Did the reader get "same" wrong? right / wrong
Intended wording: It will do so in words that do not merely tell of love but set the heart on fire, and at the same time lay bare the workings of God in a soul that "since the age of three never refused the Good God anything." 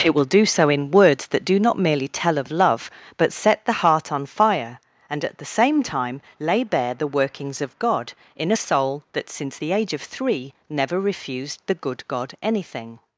right